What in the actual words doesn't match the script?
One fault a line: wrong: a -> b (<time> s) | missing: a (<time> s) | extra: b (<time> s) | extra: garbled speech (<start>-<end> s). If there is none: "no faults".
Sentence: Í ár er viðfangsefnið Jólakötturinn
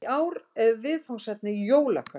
no faults